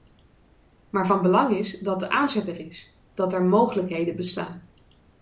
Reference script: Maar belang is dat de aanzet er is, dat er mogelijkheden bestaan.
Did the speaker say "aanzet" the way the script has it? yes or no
yes